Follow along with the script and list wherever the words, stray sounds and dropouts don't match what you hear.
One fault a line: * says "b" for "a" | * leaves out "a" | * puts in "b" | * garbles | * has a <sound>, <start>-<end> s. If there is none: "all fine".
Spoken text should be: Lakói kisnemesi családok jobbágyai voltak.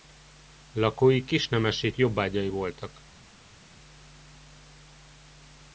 * leaves out "családok"